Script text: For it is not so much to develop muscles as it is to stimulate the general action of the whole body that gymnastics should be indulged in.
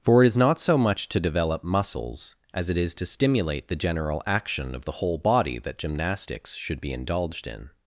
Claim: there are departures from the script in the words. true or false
false